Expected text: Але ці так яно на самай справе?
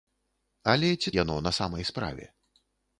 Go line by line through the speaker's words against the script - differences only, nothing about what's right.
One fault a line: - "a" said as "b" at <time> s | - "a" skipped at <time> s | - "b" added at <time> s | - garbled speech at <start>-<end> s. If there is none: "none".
- "так" skipped at 1.1 s